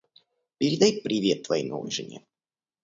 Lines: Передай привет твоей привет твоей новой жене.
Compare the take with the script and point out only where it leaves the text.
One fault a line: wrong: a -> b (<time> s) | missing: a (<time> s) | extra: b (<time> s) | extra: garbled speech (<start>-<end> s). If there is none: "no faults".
missing: привет твоей (1.6 s)